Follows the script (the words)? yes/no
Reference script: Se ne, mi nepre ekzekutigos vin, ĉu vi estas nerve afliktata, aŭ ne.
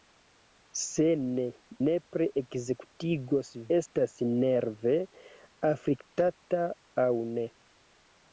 no